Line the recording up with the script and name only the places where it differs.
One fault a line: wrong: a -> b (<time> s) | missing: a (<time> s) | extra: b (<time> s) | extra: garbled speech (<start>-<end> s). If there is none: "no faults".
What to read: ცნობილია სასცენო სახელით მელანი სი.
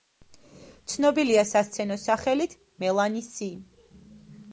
no faults